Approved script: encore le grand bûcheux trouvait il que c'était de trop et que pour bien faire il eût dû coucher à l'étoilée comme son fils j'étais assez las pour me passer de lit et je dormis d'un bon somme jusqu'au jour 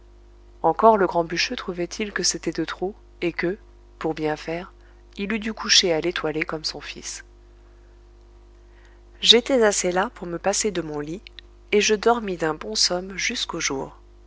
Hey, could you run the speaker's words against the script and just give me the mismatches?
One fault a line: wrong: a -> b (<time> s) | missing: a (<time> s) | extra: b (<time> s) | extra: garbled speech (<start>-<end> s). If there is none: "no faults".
extra: mon (10.8 s)